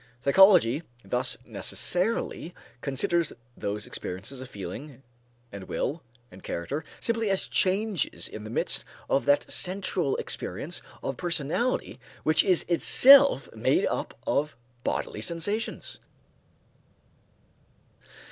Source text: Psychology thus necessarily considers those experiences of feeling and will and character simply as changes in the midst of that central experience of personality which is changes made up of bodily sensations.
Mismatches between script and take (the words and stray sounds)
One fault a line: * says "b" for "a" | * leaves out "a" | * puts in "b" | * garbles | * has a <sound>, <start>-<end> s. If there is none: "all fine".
* says "itself" for "changes"